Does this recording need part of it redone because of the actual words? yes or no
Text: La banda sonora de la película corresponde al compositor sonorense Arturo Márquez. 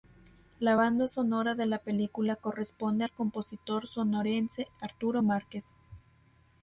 no